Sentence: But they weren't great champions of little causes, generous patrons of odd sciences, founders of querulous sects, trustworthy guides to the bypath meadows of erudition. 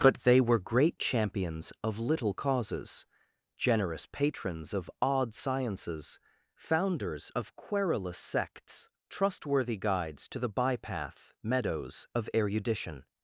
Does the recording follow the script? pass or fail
fail